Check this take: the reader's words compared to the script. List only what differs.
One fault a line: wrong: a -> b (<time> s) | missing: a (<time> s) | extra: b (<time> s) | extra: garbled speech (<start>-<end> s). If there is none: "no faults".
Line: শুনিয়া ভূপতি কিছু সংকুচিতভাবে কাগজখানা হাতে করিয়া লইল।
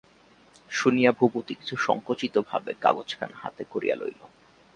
no faults